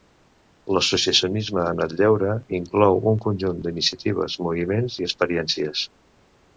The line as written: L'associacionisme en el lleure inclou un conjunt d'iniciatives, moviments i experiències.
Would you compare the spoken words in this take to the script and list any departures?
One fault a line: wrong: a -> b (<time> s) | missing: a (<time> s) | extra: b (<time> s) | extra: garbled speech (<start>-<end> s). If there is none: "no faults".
no faults